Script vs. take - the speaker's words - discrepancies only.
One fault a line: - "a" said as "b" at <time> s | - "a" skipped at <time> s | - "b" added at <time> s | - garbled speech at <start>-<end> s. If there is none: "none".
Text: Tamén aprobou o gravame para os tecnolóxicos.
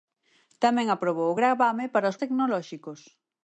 none